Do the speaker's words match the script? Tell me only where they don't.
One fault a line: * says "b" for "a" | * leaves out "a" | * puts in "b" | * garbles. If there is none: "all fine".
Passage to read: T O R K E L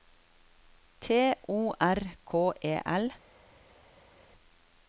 all fine